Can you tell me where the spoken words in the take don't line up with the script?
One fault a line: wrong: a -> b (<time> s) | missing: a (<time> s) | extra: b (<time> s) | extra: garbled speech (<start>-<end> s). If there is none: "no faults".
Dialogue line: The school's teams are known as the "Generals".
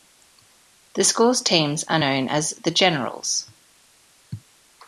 no faults